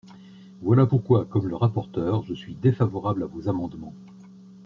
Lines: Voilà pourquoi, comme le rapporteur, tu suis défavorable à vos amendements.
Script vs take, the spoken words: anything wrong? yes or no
yes